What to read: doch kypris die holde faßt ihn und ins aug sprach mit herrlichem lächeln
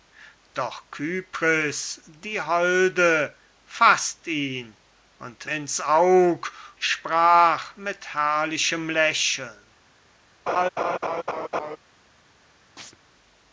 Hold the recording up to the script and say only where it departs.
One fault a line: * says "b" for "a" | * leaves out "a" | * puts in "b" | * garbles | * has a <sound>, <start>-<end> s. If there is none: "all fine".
* has a laugh, 10.5-11.8 s
* has a chirp, 12.8-13.0 s